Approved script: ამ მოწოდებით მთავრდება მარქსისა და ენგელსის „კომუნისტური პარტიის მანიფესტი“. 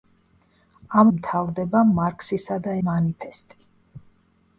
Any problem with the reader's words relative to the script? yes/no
yes